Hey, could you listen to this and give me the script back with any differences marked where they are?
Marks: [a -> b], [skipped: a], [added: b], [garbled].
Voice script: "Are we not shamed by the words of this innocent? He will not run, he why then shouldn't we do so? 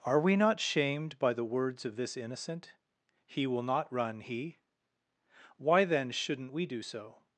"Are we not shamed by the words of this innocent? He will not run, he why then shouldn't we do so?